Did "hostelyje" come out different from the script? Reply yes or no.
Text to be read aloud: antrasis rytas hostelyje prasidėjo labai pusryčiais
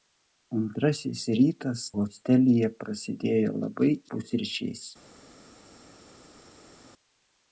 no